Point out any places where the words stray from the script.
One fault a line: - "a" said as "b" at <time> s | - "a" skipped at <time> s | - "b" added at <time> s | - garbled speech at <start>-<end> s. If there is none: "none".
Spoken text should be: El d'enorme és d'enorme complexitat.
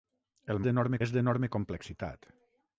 none